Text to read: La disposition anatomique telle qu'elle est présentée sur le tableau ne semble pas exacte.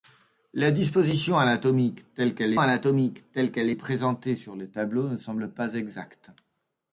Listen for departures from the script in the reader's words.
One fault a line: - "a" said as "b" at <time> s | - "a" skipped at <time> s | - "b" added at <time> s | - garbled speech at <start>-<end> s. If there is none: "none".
- "anatomique telle qu'elle" added at 2.6 s